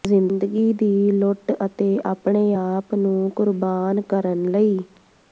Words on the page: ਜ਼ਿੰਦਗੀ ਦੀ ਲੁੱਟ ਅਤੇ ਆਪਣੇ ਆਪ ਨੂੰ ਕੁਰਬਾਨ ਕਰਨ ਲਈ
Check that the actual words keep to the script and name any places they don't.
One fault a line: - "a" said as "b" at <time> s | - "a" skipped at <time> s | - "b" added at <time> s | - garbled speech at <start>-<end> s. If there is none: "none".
none